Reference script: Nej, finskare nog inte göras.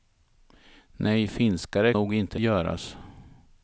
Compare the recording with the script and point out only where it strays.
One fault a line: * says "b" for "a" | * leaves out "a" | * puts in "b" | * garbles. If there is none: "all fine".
all fine